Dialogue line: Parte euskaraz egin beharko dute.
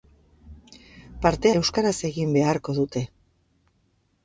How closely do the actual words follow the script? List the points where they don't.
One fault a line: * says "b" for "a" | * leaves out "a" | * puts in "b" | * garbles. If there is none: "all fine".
all fine